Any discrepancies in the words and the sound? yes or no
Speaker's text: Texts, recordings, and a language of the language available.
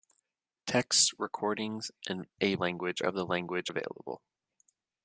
no